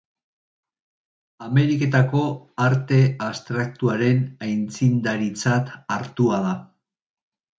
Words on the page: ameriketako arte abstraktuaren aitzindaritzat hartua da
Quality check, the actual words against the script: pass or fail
pass